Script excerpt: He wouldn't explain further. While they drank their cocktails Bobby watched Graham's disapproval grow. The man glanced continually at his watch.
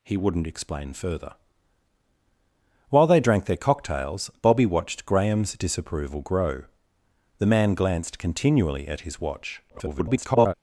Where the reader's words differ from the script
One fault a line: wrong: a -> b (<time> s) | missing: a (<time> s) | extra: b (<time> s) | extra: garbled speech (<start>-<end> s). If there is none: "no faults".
extra: garbled speech (9.7-10.5 s)